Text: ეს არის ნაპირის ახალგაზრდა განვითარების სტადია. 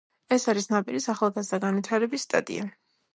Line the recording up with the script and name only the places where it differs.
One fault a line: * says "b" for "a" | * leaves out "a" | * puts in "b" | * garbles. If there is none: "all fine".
all fine